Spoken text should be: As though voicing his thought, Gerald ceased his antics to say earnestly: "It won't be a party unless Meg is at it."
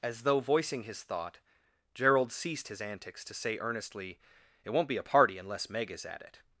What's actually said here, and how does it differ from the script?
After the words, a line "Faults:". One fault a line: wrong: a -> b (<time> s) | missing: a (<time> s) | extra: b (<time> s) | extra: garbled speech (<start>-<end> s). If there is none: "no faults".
As though voicing his thought, Gerald ceased his antics to say earnestly: "It won't be a party unless Meg is at it."
Faults:
no faults